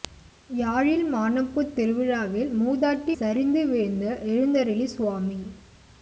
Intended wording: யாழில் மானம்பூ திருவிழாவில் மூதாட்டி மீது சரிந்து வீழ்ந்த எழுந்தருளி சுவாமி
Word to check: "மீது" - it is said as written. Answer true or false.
false